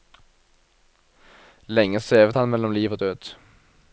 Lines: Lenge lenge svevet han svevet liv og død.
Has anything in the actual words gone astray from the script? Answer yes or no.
yes